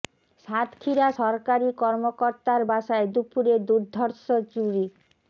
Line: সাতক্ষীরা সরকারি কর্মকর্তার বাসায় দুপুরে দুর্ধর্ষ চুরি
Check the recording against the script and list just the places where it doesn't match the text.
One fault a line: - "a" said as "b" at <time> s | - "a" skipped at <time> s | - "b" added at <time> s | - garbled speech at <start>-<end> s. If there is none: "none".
none